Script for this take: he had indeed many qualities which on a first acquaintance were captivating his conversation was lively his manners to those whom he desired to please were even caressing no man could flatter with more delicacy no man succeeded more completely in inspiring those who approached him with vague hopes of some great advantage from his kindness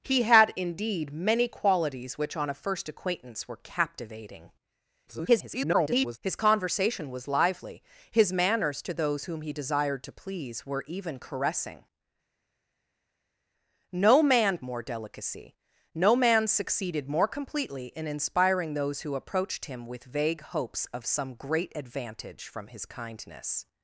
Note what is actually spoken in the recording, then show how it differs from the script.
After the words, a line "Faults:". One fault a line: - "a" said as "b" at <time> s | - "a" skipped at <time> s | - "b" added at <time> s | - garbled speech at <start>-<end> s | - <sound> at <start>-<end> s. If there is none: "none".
he had indeed many qualities which on a first acquaintance were captivating [garbled] his conversation was lively his manners to those whom he desired to please were even caressing no man more delicacy no man succeeded more completely in inspiring those who approached him with vague hopes of some great advantage from his kindness
Faults:
- garbled speech at 5.1-6.2 s
- "could flatter with" skipped at 14.6 s